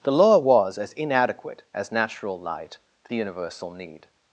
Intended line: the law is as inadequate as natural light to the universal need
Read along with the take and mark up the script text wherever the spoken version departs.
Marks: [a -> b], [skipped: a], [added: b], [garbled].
the law [is -> was] as inadequate as natural light to the universal need